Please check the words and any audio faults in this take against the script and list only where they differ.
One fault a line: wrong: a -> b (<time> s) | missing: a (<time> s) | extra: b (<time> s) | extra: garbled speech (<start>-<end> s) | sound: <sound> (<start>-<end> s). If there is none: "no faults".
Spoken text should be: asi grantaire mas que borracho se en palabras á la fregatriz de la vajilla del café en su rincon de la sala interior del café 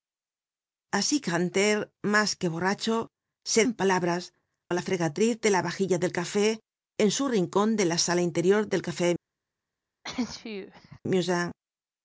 sound: sneeze (10.0-11.0 s)